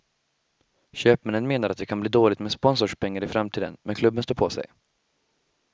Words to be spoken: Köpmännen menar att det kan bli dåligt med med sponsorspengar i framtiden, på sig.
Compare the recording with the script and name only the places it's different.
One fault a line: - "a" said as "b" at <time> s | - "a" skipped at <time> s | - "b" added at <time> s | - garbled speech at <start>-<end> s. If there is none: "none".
- "med" skipped at 2.5 s
- "men klubben står" added at 3.8 s